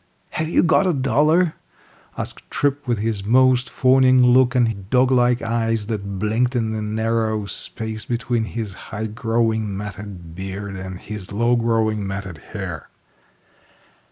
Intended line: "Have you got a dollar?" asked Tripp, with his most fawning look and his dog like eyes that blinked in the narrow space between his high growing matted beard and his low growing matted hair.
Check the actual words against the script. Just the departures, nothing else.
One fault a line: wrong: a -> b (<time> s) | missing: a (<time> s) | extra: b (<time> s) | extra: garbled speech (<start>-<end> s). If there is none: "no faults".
missing: his (4.7 s)